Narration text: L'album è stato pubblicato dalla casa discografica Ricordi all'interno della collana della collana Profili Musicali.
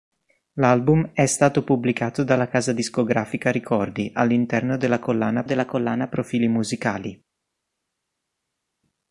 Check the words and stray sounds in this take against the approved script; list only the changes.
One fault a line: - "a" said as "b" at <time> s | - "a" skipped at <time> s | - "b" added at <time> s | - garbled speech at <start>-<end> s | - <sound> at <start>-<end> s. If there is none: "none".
none